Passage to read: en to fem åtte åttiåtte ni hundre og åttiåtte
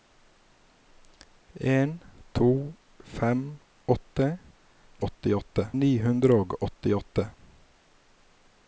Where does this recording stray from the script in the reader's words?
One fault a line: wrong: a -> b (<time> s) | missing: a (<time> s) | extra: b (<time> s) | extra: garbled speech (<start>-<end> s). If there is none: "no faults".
no faults